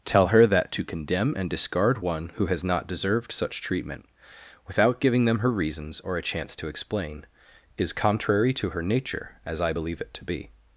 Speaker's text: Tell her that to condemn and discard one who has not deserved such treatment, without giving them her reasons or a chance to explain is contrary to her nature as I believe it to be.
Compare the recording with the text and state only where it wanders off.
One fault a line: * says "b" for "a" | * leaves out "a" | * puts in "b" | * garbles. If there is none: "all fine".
all fine